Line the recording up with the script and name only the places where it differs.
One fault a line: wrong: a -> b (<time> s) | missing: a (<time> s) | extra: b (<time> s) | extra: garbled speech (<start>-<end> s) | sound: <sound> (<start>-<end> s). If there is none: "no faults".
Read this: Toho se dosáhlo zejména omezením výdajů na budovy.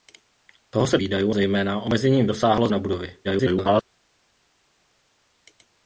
wrong: dosáhlo -> výdajů (1.0 s)
wrong: výdajů -> dosáhlo (2.3 s)
extra: garbled speech (3.2-3.8 s)